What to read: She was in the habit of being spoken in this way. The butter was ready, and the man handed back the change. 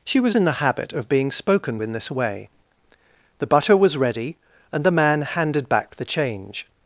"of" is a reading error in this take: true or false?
false